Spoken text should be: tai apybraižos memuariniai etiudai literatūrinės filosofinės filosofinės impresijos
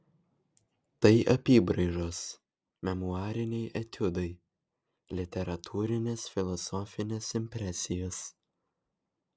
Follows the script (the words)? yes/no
no